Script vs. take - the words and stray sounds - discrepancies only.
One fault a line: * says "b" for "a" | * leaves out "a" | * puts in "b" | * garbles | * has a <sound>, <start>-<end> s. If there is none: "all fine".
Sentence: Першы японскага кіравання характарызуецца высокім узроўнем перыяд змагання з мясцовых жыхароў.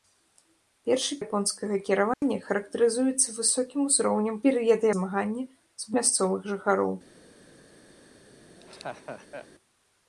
* has a dropout, 2.1-2.2 s
* has a laugh, 8.3-9.5 s